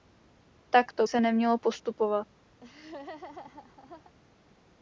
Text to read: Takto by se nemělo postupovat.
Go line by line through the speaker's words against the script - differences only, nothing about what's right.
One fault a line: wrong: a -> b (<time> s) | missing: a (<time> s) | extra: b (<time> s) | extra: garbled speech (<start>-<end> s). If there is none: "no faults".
missing: by (1.1 s)